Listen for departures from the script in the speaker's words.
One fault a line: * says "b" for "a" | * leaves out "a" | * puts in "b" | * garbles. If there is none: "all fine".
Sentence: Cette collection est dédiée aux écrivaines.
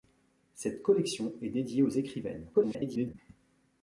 * garbles